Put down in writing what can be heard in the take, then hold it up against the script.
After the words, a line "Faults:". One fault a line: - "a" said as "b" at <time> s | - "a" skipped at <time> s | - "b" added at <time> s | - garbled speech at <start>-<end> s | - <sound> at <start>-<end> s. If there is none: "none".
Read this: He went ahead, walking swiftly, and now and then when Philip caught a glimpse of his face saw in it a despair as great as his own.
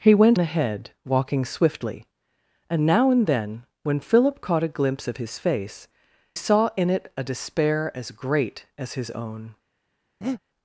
He went ahead, walking swiftly, and now and then when Philip caught a glimpse of his face saw in it a despair as great as his own.
Faults:
- breath at 10.2-10.4 s